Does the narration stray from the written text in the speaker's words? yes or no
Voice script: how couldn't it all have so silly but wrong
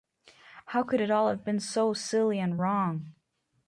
yes